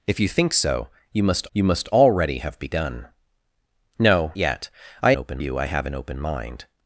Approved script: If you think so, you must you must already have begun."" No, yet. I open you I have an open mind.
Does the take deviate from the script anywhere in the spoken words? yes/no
no